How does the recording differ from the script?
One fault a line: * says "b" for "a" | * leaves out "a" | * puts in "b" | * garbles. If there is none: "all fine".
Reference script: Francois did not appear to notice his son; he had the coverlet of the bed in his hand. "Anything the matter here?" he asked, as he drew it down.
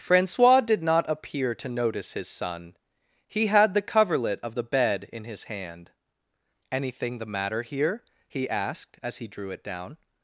all fine